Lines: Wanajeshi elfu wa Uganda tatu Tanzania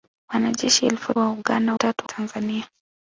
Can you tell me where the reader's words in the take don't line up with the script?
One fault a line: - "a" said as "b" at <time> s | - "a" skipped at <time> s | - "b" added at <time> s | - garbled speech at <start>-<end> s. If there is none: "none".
none